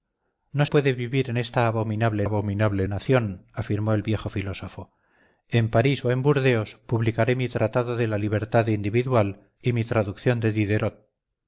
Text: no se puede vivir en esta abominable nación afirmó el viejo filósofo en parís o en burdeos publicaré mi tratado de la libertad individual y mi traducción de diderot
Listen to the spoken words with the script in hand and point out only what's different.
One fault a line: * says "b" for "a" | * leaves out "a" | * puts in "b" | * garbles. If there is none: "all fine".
* leaves out "se"
* puts in "abominable"